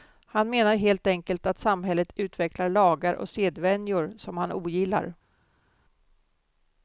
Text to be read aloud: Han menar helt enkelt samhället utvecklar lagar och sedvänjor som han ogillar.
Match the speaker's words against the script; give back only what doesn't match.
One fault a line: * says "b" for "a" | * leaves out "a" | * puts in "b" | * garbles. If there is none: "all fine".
* puts in "att"